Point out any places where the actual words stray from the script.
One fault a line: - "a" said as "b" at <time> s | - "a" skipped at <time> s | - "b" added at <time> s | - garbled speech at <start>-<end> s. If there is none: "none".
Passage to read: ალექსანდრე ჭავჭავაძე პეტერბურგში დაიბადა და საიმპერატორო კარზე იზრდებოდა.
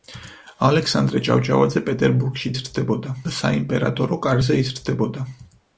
- "დაიბადა" said as "იზრდებოდა" at 2.6 s